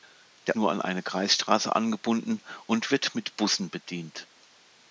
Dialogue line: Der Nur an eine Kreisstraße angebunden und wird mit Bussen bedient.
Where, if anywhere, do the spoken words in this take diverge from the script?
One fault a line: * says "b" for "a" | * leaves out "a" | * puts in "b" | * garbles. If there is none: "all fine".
all fine